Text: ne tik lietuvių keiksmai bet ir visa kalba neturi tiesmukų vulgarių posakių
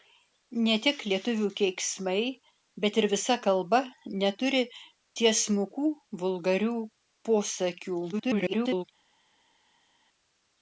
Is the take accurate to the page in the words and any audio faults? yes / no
no